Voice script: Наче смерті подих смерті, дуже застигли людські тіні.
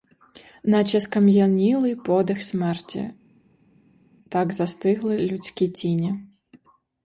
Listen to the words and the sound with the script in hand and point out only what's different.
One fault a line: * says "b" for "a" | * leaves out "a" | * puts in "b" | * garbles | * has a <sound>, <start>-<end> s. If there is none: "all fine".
* says "скам'янілий" for "смерті"
* says "так" for "дуже"